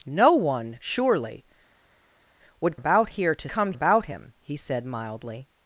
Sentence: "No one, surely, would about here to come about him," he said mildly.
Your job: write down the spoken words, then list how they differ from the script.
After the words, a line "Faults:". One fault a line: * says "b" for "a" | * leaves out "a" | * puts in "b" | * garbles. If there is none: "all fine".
"No one, surely, would about here to come about him," he said mildly.
Faults:
all fine